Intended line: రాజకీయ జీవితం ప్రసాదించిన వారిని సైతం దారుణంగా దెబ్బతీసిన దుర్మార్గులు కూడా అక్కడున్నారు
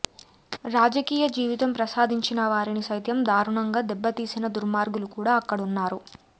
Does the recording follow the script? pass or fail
pass